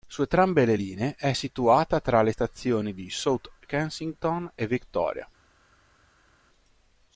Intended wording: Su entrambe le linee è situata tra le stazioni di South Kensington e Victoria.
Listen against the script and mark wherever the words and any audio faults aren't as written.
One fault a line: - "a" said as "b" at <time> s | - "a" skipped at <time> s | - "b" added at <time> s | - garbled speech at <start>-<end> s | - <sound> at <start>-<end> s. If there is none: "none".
none